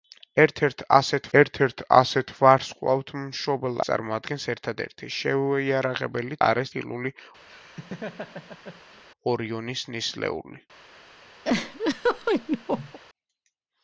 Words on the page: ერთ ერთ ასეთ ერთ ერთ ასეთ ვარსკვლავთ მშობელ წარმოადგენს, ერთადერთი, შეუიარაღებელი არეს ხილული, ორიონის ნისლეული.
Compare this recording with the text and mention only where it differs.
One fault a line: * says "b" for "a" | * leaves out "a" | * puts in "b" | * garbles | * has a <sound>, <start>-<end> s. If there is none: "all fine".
* has a laugh, 7.5-9.0 s
* has a laugh, 11.4-13.0 s